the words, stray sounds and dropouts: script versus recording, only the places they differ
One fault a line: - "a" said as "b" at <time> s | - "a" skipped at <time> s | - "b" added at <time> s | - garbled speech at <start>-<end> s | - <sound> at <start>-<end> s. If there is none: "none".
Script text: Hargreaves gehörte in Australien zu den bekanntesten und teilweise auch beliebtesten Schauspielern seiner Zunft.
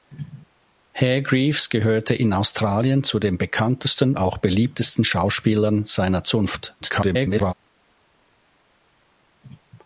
- "und teilweise" skipped at 4.2 s
- garbled speech at 6.8-7.5 s